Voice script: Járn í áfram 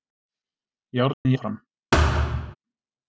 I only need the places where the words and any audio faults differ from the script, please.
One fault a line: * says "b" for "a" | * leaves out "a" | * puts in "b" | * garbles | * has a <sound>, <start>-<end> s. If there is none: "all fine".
* has a dropout, 1.1-1.3 s
* has a thud, 1.9-2.6 s